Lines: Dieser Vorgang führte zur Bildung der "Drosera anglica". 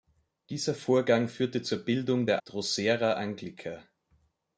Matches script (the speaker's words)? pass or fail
pass